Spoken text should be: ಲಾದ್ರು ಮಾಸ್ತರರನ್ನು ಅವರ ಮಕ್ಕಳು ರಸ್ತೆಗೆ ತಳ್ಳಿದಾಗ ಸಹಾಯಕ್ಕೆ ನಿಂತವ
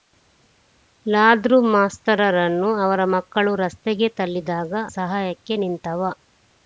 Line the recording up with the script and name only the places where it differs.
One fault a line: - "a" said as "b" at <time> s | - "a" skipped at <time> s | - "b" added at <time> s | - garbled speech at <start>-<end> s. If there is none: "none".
none